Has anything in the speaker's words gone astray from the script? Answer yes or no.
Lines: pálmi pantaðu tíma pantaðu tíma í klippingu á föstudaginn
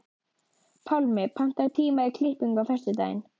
yes